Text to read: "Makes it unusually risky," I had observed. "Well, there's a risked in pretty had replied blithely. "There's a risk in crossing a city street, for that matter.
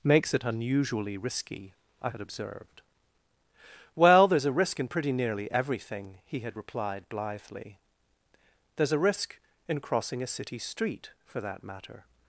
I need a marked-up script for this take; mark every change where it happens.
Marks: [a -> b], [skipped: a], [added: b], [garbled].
"Makes it unusually risky," I had observed. "Well, there's a [risked -> risk] in pretty [added: nearly everything he] had replied blithely. "There's a risk in crossing a city street, for that matter.